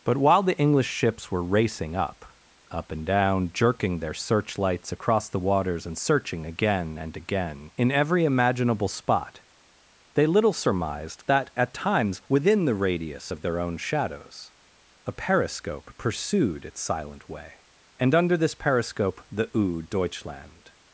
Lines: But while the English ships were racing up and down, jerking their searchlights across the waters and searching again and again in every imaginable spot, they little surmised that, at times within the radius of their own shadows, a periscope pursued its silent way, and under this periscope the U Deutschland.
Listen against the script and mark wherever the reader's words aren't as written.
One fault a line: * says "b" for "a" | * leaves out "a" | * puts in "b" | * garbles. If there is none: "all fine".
* puts in "up"